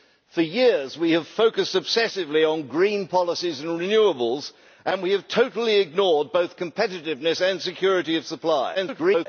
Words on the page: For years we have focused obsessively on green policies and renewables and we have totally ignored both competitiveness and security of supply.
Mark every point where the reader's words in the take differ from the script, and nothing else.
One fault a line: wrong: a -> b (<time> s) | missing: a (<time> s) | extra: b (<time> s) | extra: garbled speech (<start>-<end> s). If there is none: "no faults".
extra: garbled speech (8.7-9.3 s)